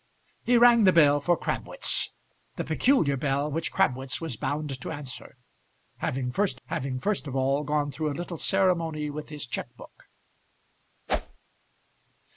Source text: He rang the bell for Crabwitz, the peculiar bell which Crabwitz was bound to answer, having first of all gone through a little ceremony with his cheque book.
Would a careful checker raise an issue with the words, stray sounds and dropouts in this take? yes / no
yes